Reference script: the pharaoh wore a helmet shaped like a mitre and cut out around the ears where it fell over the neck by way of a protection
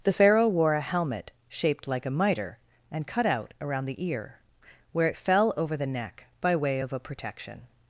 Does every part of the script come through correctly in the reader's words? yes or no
no